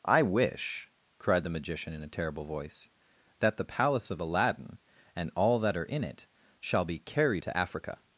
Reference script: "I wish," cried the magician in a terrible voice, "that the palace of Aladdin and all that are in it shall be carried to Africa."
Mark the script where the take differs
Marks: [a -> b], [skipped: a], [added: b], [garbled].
"I wish," cried the magician in a terrible voice, "that the palace of Aladdin and all that are in it shall be carried to Africa."